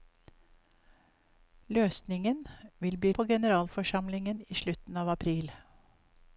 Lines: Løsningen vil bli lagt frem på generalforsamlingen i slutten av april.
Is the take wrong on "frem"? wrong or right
wrong